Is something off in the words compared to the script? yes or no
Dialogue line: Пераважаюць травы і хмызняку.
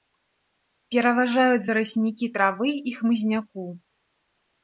yes